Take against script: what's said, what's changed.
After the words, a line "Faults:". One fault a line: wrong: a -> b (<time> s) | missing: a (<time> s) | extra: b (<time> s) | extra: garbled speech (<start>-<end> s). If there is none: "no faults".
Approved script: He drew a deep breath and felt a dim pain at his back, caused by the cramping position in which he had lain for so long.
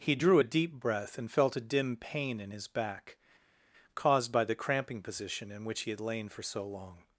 He drew a deep breath and felt a dim pain in his back, caused by the cramping position in which he had lain for so long.
Faults:
wrong: at -> in (2.4 s)